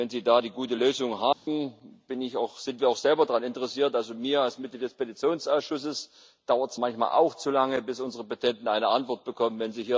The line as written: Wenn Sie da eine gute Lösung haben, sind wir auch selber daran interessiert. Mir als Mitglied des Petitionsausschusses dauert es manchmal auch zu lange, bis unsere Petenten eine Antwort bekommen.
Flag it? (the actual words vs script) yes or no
no